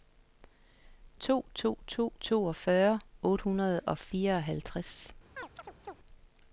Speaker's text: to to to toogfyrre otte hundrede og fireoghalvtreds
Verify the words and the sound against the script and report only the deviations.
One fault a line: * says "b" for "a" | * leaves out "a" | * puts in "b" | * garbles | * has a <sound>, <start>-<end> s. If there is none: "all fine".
* has a chirp, 5.4-6.0 s